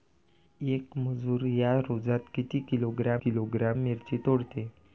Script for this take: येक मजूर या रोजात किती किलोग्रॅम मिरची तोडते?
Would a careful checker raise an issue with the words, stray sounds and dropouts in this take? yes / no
yes